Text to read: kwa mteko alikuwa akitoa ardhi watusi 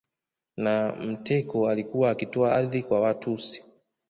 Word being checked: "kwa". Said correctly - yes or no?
no